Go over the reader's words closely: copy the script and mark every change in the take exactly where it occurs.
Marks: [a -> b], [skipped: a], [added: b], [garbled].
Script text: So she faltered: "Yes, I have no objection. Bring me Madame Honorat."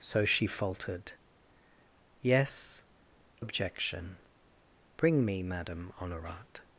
So she faltered: "Yes, [skipped: I have no] objection. Bring me Madame Honorat."